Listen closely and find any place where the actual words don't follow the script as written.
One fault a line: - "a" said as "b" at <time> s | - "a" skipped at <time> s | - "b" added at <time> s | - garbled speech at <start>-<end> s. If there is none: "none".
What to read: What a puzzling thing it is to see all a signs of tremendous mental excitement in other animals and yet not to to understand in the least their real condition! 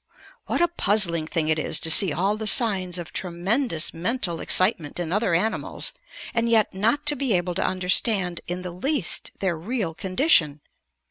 - "a" said as "the" at 2.4 s
- "be able" added at 7.2 s